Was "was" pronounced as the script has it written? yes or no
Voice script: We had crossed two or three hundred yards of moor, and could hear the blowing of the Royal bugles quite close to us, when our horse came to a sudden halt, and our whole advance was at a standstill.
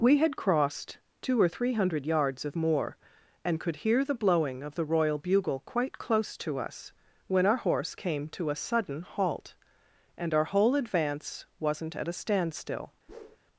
no